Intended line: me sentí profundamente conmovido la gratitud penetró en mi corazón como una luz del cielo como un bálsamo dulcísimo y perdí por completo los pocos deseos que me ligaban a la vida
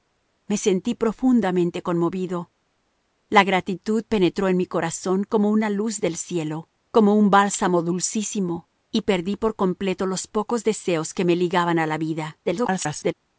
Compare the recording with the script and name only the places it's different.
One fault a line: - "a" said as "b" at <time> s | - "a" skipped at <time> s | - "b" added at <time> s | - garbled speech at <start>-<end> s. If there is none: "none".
- garbled speech at 12.4-13.1 s